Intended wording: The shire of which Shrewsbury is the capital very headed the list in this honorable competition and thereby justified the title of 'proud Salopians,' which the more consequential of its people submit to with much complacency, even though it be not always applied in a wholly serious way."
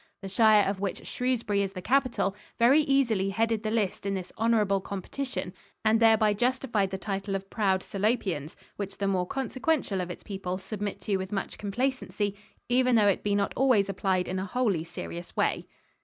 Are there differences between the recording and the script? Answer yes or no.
yes